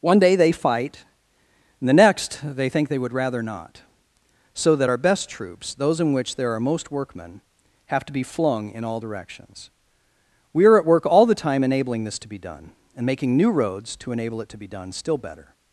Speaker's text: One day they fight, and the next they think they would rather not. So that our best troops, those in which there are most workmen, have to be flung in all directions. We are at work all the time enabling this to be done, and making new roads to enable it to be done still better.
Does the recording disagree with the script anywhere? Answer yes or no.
no